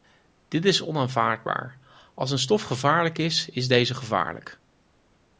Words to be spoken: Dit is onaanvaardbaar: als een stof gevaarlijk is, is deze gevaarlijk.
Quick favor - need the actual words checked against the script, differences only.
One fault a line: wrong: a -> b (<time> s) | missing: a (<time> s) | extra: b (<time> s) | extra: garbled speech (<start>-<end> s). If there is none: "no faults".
no faults